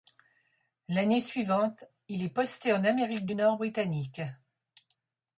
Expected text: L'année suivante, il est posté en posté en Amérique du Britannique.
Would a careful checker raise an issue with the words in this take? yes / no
yes